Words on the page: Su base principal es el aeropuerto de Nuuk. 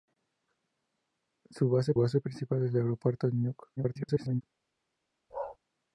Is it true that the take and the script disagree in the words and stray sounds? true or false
true